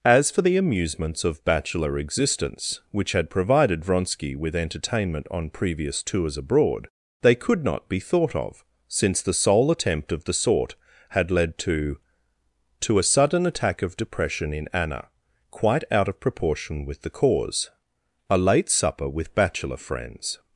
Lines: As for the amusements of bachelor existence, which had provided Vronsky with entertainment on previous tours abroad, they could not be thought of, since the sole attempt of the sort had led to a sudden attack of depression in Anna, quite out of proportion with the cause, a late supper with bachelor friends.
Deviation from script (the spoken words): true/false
true